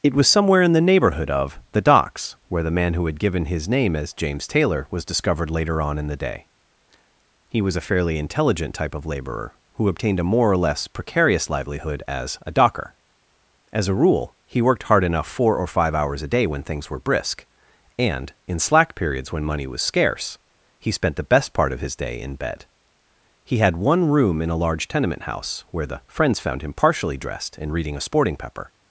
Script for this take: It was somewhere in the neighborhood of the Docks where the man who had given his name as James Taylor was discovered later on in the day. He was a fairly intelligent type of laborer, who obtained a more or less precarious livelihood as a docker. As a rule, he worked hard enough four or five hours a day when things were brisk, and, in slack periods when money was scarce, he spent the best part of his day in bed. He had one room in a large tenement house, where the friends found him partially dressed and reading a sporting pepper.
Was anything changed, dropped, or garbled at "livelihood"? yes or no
no